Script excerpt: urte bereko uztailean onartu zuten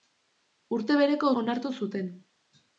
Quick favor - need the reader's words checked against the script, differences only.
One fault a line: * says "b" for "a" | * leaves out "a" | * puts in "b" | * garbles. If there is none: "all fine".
* leaves out "uztailean"